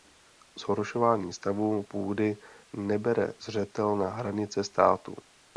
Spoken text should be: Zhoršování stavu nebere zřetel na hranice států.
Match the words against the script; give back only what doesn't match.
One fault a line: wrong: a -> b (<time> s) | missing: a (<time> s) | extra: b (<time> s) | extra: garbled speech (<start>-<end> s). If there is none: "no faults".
extra: půdy (1.8 s)